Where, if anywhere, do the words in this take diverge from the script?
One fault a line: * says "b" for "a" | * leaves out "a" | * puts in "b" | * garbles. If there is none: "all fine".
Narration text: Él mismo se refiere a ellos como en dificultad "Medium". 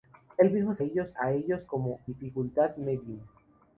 * says "ellos" for "refiere"
* leaves out "en"